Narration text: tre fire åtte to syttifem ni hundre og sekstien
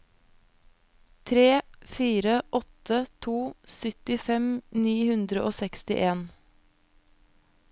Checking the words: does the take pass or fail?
pass